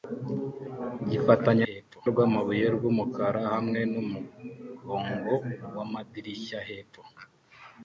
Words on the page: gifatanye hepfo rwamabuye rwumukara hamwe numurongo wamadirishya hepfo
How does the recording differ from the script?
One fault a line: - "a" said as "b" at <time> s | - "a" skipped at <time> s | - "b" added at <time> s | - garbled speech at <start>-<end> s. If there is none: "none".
none